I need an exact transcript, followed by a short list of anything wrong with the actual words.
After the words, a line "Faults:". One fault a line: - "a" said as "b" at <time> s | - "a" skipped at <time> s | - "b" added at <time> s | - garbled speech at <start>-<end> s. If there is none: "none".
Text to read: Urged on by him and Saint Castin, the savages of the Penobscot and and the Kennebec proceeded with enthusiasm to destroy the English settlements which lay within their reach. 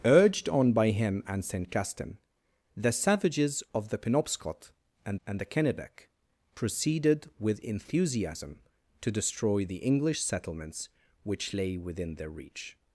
Urged on by him and Saint Castin, the savages of the Penobscot and and the Kennebec proceeded with enthusiasm to destroy the English settlements which lay within their reach.
Faults:
none